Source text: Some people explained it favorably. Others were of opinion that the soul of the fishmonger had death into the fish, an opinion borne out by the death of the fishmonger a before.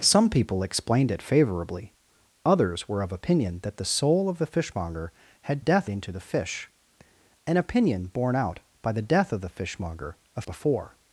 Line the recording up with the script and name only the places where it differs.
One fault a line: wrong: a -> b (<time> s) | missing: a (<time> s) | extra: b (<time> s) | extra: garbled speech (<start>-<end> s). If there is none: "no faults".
no faults